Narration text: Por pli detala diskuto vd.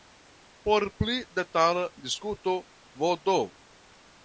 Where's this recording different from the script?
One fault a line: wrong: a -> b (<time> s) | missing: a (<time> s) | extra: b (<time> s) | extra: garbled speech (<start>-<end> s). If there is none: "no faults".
no faults